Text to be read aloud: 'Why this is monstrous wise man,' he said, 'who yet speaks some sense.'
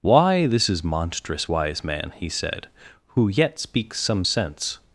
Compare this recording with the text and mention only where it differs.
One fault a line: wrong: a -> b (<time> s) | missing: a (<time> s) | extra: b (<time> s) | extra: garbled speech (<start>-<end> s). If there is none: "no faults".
no faults